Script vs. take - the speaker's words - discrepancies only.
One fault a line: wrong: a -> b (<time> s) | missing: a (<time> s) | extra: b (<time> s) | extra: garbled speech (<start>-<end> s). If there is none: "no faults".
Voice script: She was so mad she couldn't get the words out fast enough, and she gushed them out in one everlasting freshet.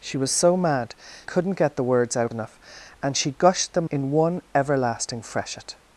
missing: she (0.9 s)
missing: fast (2.3 s)
missing: out (3.9 s)